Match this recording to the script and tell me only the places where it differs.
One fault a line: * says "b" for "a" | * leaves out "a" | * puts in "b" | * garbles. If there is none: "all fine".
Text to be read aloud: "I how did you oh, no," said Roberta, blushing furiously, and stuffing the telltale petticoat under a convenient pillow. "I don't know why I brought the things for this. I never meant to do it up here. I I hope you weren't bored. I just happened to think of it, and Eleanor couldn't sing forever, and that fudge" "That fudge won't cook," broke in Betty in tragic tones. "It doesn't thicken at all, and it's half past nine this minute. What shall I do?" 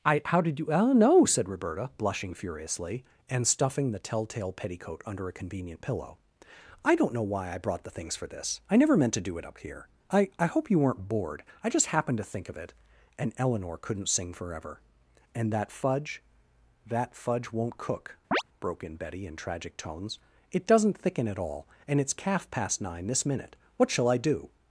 * says "calf" for "half"